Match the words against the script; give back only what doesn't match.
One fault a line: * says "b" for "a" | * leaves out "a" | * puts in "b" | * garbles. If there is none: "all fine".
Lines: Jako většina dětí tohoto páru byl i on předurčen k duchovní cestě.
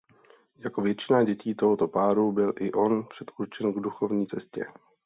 all fine